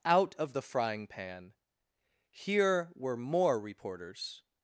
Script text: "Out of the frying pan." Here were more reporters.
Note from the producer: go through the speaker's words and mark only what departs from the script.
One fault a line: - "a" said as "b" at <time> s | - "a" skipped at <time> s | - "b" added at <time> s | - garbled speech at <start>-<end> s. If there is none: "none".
none